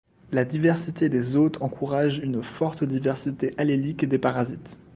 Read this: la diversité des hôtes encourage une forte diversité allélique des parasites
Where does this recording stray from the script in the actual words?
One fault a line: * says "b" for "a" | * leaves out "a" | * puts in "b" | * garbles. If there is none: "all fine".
all fine